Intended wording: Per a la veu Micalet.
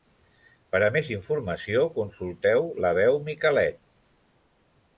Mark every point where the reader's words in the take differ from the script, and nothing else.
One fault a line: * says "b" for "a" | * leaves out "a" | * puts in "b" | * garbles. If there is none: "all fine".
* puts in "més informació consulteu"